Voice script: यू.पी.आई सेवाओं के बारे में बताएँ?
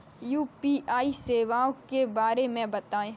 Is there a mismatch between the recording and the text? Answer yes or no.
no